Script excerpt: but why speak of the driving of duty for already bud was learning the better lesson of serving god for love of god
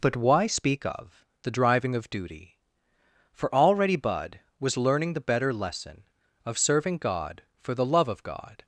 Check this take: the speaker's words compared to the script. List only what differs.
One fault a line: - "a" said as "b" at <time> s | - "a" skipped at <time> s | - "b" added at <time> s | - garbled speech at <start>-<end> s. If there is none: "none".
- "the" added at 7.7 s